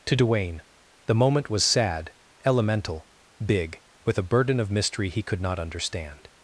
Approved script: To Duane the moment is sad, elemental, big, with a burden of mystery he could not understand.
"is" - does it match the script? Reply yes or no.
no